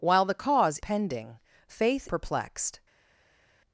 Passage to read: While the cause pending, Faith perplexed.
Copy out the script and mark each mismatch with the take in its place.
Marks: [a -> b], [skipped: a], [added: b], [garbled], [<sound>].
While the cause pending, Faith perplexed.